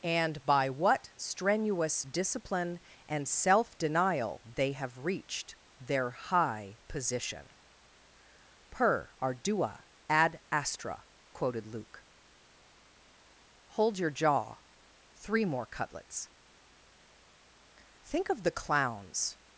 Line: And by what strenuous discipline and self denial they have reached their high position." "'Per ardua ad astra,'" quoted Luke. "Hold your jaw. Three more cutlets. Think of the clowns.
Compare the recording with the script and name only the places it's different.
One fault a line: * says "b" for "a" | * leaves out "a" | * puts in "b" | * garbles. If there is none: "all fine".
all fine